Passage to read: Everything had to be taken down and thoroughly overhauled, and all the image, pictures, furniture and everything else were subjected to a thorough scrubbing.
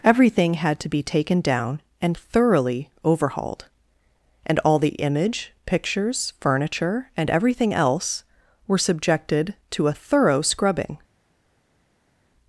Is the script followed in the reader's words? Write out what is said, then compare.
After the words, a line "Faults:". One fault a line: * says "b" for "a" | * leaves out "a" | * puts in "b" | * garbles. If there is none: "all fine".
Everything had to be taken down and thoroughly overhauled, and all the image, pictures, furniture and everything else were subjected to a thorough scrubbing.
Faults:
all fine